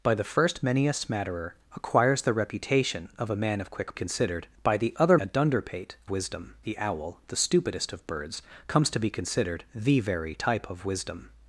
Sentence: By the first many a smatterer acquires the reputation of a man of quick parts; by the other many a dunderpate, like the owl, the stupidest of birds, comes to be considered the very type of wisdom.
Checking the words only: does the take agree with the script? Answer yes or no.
no